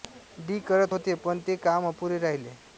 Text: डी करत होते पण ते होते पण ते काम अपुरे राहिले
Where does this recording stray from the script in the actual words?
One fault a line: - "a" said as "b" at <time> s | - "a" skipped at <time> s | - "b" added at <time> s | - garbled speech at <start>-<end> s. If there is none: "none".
- "होते पण ते" skipped at 1.6 s